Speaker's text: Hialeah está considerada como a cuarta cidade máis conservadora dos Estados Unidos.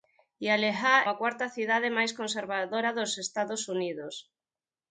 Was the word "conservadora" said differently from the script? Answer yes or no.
no